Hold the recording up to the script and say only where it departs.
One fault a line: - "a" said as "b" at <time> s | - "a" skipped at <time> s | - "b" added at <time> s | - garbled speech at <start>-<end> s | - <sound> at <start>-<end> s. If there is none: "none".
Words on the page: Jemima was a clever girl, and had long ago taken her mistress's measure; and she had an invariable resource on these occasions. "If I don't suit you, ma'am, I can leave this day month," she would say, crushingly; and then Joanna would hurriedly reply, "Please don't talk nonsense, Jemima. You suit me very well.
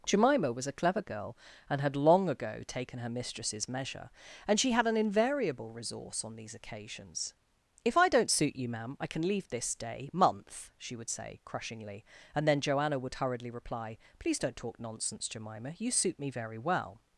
none